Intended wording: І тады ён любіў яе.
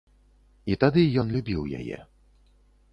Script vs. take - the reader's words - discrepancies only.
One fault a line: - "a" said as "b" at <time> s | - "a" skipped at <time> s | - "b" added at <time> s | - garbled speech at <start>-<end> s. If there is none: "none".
none